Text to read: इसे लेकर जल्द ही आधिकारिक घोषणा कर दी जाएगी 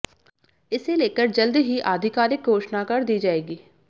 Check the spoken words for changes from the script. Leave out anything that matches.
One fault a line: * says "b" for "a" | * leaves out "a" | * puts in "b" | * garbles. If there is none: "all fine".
all fine